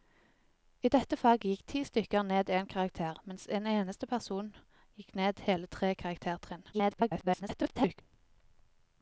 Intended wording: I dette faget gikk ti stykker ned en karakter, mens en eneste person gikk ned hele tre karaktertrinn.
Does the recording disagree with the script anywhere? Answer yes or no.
yes